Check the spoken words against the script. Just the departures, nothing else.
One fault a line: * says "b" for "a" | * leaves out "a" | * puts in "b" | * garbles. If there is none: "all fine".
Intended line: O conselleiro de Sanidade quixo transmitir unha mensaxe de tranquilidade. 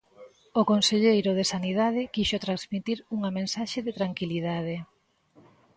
all fine